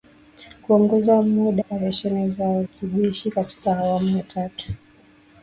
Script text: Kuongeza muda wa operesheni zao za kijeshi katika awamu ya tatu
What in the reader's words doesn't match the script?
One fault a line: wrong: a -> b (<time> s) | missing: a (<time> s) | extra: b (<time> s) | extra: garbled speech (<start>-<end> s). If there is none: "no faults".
missing: wa (1.6 s)
missing: za (2.6 s)